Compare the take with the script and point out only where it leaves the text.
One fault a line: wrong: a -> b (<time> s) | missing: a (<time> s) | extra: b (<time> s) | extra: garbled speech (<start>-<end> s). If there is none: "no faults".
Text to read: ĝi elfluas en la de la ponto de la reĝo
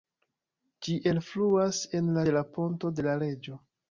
no faults